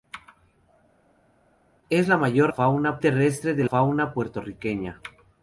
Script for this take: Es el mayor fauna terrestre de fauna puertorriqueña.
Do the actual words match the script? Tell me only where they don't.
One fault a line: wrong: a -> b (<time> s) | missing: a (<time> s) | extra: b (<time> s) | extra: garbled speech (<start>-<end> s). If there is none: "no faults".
no faults